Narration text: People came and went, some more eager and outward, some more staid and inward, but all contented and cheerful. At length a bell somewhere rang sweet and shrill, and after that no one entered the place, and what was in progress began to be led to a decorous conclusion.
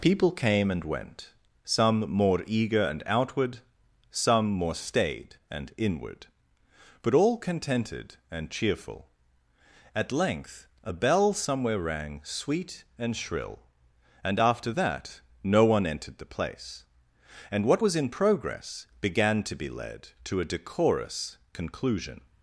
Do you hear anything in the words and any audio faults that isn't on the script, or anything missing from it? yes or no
no